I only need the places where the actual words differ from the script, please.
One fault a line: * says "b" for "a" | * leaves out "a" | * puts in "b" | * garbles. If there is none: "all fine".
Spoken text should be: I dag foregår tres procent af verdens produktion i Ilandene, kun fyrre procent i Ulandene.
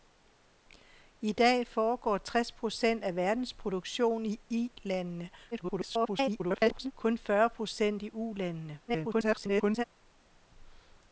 * garbles
* garbles